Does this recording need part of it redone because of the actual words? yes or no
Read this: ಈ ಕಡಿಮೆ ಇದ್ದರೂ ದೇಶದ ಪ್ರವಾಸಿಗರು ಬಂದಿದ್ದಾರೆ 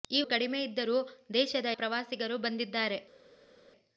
no